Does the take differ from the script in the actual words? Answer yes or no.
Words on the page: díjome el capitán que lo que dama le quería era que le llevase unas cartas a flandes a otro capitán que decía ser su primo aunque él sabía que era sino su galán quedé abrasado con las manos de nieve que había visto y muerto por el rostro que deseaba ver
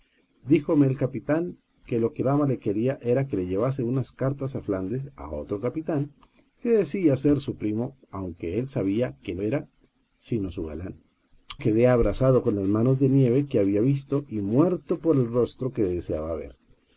no